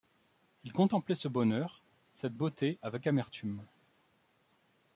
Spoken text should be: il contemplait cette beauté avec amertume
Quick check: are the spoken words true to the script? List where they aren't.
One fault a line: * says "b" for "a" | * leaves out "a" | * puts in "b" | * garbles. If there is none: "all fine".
* puts in "ce bonheur"